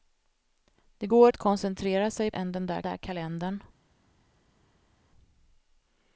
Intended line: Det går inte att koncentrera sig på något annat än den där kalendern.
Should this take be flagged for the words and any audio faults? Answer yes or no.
yes